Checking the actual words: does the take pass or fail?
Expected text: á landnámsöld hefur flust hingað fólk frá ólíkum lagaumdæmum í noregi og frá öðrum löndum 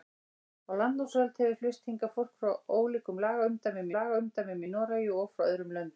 fail